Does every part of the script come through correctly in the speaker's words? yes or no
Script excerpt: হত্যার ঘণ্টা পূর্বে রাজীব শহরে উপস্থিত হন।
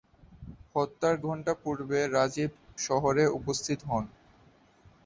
yes